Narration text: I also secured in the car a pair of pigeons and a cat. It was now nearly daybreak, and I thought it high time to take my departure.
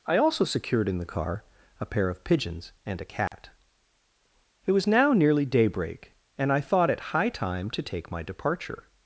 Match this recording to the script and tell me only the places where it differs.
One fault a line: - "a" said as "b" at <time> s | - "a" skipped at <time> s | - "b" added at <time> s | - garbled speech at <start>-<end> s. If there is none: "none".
none